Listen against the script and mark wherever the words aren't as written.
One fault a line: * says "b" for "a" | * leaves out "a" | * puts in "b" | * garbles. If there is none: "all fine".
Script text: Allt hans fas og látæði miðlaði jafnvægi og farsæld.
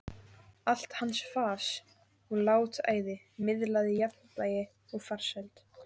all fine